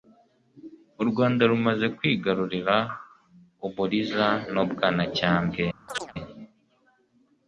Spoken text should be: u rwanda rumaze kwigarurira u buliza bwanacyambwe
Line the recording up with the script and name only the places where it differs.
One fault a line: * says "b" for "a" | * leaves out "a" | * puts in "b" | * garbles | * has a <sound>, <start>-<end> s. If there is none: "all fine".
* puts in "n'u"
* has a chirp, 5.9-6.1 s